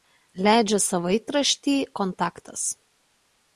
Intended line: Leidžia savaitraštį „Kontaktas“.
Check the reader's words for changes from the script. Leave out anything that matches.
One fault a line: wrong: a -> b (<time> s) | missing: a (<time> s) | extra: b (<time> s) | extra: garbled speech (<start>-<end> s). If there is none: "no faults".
no faults